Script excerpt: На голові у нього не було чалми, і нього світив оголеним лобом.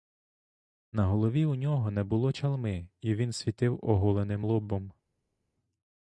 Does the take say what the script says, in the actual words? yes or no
no